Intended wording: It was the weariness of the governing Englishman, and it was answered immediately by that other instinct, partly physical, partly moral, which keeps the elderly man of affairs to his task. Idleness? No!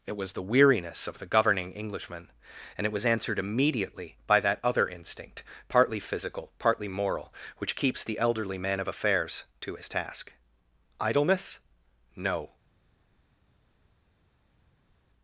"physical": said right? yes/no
yes